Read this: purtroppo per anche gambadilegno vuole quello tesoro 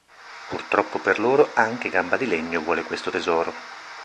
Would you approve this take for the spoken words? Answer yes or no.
no